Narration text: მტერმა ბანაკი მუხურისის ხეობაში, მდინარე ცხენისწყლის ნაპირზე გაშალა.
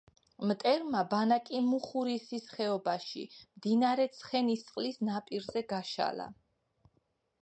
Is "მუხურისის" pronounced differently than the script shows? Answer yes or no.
no